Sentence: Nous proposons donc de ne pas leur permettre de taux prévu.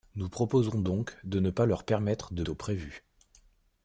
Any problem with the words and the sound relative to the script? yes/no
no